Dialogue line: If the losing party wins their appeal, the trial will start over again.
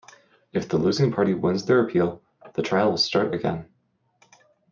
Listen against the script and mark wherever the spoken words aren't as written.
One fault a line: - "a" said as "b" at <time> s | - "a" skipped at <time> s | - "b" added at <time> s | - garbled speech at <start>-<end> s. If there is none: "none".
- "over" skipped at 3.3 s